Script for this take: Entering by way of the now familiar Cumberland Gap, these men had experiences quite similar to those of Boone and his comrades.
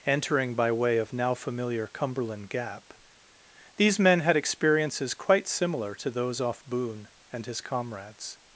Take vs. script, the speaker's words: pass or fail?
fail